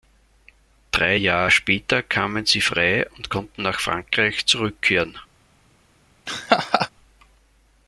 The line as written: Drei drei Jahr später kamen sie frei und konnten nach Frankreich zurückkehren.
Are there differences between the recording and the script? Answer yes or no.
yes